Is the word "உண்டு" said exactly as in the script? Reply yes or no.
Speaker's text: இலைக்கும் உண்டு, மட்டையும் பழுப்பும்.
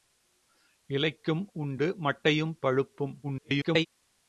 yes